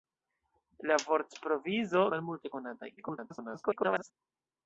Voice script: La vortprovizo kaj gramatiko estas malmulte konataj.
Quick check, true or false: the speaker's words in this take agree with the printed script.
false